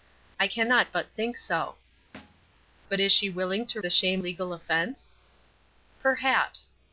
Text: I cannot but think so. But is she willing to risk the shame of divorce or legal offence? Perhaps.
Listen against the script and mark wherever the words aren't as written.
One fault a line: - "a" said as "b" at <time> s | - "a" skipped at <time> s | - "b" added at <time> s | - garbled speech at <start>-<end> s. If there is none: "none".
- "risk" skipped at 3.8 s
- "of divorce or" skipped at 4.2 s